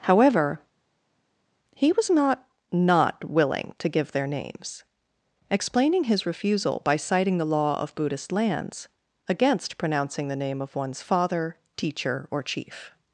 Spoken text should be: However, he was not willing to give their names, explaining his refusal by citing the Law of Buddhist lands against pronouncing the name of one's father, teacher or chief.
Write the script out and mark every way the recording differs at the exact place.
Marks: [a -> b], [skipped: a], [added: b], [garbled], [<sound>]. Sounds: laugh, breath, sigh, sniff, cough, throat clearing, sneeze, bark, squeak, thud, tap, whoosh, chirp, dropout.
However, he was not [added: not] willing to give their names, explaining his refusal by citing the Law of Buddhist lands against pronouncing the name of one's father, teacher or chief.